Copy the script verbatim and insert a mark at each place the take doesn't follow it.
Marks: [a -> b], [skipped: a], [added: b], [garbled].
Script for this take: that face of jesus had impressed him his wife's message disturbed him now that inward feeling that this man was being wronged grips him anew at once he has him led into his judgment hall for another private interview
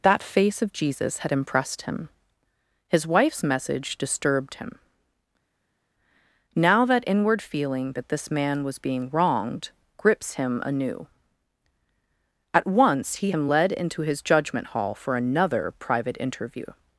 that face of jesus had impressed him his wife's message disturbed him now that inward feeling that this man was being wronged grips him anew at once he [skipped: has] him led into his judgment hall for another private interview